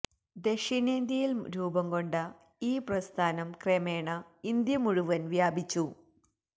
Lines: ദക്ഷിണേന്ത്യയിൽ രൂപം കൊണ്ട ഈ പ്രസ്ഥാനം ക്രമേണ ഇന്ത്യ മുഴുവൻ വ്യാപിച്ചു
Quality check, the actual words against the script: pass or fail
pass